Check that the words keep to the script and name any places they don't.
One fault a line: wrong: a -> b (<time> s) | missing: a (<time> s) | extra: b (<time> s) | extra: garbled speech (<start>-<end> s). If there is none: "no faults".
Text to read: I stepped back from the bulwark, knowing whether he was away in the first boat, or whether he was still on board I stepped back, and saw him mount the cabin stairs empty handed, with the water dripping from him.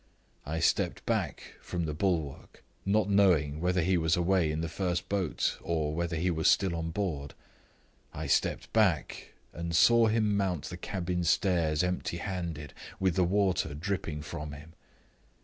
extra: not (2.9 s)